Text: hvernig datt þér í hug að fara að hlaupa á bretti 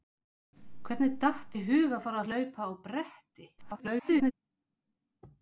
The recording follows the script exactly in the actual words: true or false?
false